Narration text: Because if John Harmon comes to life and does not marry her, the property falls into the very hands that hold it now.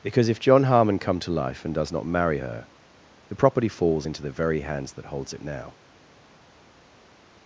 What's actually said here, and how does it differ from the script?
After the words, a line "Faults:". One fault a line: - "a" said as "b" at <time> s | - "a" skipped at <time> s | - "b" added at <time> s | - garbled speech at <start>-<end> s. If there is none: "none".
Because if John Harmon come to life and does not marry her, the property falls into the very hands that holds it now.
Faults:
- "comes" said as "come" at 1.0 s
- "hold" said as "holds" at 5.1 s